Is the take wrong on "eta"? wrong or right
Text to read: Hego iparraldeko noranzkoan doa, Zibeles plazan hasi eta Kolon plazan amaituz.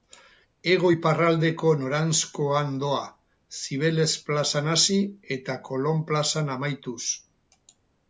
right